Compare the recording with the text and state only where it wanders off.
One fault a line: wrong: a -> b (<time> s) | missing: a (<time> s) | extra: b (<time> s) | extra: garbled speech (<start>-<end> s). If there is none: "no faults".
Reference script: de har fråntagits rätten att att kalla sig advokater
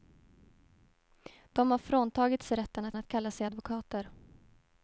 no faults